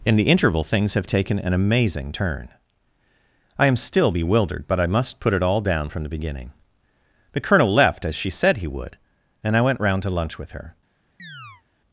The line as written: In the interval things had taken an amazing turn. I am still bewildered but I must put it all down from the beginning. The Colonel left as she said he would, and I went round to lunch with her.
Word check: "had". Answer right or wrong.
wrong